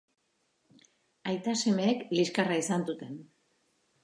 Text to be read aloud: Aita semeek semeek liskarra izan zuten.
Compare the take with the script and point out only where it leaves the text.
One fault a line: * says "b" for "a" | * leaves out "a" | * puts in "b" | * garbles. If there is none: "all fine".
* leaves out "semeek"